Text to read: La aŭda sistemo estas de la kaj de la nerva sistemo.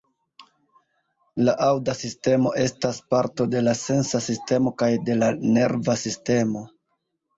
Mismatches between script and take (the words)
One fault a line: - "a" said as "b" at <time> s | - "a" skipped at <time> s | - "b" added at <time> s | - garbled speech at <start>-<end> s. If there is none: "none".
- "parto" added at 3.1 s
- "sensa sistemo" added at 3.8 s